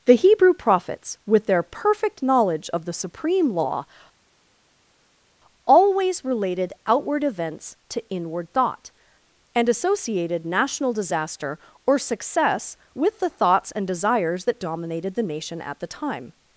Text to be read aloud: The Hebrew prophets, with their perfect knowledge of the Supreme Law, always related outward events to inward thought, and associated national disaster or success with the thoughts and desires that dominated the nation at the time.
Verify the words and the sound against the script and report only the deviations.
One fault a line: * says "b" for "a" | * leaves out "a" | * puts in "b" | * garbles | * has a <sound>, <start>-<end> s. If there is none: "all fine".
all fine